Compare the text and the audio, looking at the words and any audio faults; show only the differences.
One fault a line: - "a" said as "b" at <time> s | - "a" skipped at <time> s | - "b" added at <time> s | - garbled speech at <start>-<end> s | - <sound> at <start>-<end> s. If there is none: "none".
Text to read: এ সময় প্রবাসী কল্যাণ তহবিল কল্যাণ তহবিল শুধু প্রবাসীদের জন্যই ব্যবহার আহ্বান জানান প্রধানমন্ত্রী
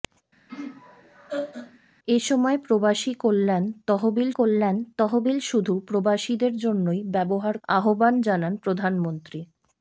- laugh at 0.5-1.8 s